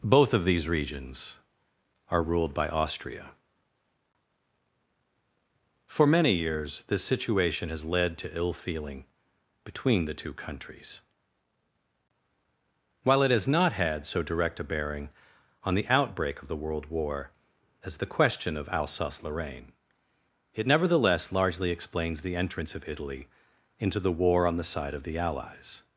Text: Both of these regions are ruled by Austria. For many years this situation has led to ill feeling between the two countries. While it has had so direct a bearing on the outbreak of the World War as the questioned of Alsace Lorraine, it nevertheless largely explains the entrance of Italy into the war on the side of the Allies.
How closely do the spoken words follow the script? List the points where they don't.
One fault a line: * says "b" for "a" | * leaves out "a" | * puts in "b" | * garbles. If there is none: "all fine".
* puts in "not"
* says "question" for "questioned"